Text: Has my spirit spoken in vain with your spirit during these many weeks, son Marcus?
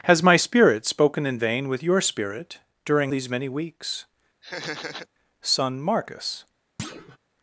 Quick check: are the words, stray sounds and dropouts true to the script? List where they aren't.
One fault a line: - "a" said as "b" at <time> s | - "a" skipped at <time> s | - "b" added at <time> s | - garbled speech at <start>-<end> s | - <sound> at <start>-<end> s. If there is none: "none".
- laugh at 4.4-5.1 s
- thud at 6.8-7.2 s